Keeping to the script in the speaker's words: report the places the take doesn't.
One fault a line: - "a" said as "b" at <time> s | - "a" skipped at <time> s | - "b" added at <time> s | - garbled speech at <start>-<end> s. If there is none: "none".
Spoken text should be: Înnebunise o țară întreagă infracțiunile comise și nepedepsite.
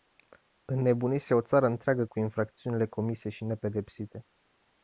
- "cu" added at 2.0 s